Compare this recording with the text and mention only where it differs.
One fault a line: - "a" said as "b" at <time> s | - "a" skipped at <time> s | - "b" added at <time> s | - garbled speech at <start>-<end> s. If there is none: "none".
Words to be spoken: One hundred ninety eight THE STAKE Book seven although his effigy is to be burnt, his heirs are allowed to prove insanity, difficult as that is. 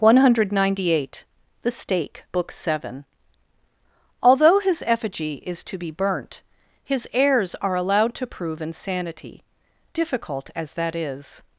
none